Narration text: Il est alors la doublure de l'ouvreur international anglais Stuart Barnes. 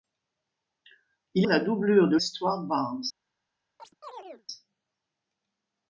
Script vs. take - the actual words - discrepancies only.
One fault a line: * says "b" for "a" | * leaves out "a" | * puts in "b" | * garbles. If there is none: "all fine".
* leaves out "est alors"
* leaves out "l'ouvreur international anglais"